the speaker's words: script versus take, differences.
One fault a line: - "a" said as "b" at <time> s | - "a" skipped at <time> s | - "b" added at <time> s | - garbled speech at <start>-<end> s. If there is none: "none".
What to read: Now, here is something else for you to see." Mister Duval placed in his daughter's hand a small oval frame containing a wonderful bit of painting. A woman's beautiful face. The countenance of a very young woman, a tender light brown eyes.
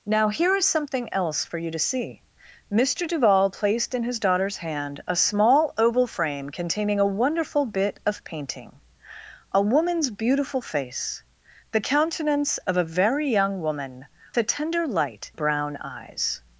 none